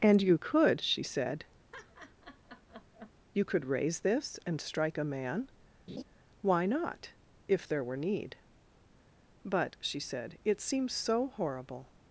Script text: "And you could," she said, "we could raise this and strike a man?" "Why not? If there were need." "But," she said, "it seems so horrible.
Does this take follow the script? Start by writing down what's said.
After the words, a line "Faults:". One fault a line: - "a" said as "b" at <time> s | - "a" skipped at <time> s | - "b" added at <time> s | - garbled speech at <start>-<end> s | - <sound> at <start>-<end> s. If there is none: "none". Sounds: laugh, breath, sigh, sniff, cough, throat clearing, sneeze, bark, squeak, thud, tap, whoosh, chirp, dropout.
"And you could," she said, "you could raise this and strike a man?" "Why not? If there were need." "But," she said, "it seems so horrible.
Faults:
- laugh at 1.7-3.1 s
- "we" said as "you" at 3.3 s
- laugh at 5.9-6.0 s